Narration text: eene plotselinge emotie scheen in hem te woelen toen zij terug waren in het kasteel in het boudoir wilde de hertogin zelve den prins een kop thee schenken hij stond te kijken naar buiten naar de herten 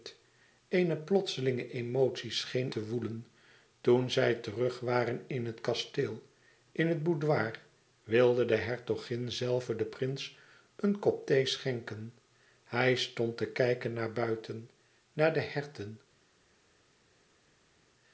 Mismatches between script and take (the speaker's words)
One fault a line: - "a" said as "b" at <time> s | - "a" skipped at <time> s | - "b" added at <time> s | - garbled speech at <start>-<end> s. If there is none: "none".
- "in hem" skipped at 2.7 s